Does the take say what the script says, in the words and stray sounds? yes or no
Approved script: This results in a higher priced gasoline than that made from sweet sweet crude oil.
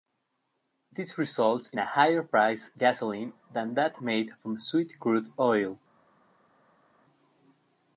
no